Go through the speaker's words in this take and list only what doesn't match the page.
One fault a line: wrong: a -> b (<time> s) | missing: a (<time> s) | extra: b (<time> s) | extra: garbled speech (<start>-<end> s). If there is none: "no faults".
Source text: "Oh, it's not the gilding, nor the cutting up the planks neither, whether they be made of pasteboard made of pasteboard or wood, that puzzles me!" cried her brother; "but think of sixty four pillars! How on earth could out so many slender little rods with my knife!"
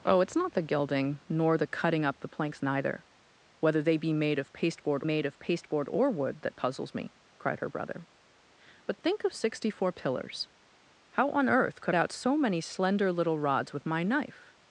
no faults